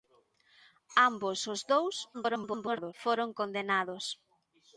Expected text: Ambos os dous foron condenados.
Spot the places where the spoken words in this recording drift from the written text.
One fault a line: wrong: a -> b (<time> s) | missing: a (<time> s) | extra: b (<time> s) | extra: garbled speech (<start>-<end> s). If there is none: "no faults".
extra: garbled speech (2.1-2.9 s)